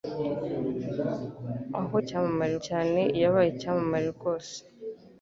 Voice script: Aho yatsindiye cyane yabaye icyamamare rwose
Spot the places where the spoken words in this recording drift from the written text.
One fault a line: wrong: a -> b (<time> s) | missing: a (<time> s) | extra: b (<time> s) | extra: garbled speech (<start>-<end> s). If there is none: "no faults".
wrong: yatsindiye -> icyamamare (2.0 s)